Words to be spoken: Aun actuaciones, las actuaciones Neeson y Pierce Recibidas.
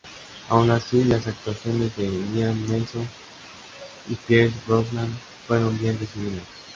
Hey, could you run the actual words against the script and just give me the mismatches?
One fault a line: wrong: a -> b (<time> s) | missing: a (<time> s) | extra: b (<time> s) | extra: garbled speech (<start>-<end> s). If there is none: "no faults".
wrong: actuaciones -> así (0.7 s)
extra: de Liam (1.9 s)
extra: Brosnan fueron bien (4.7 s)